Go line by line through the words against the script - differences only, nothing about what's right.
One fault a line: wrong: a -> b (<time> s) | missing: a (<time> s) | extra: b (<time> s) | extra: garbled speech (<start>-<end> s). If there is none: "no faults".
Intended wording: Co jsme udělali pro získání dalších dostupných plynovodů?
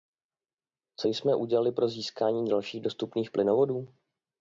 no faults